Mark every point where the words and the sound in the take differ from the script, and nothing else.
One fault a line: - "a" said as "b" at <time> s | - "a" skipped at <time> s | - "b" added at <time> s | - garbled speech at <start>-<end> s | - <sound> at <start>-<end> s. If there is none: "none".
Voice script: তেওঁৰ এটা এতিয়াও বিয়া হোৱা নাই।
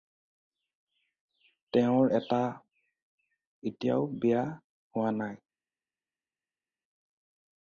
none